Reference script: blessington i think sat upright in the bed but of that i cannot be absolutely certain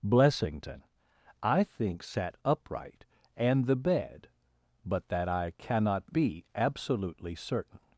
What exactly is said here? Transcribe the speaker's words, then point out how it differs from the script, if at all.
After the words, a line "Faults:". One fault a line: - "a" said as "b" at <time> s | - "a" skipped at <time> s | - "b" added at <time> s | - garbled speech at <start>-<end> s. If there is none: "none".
blessington i think sat upright and the bed but that i cannot be absolutely certain
Faults:
- "in" said as "and" at 3.3 s
- "of" skipped at 5.1 s